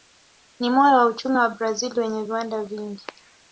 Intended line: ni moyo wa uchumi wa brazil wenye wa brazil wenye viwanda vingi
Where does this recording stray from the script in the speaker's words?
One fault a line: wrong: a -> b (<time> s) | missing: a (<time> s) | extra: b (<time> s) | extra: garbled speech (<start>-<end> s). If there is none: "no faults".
missing: wa brazil wenye (2.2 s)